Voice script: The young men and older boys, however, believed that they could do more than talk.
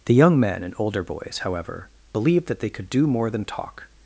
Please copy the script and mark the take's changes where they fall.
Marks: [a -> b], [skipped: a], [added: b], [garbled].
The young men and older boys, however, believed that they could do more than talk.